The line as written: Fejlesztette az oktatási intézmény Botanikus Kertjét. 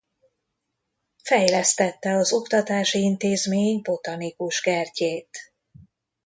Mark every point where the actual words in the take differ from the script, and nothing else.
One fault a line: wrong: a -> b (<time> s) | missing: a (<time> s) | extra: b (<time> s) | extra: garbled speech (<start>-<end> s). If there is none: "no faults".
no faults